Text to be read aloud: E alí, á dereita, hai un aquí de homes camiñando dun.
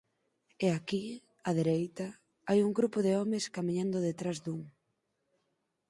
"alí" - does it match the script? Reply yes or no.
no